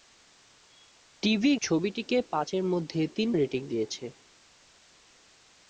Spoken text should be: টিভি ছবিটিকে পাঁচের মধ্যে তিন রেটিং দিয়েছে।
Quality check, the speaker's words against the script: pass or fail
pass